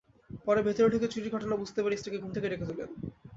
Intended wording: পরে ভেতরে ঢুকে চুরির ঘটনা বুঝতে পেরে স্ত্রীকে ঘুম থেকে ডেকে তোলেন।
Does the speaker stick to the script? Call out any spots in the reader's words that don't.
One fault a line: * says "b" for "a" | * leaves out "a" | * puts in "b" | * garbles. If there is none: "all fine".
all fine